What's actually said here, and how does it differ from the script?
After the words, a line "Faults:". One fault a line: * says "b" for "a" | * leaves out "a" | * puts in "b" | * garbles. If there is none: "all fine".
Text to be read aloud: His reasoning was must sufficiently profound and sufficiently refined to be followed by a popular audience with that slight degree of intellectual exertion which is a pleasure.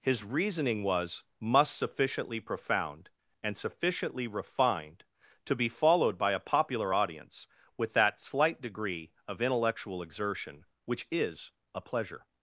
His reasoning was must sufficiently profound and sufficiently refined to be followed by a popular audience with that slight degree of intellectual exertion which is a pleasure.
Faults:
all fine